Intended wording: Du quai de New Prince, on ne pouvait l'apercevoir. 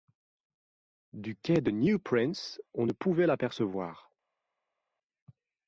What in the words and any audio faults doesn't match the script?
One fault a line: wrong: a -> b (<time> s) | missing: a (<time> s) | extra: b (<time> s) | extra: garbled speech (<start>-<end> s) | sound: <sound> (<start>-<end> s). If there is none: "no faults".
no faults